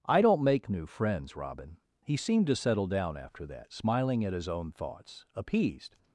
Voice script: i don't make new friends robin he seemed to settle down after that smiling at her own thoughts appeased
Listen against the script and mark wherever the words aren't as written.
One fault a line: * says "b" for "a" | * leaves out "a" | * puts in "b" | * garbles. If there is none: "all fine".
* says "his" for "her"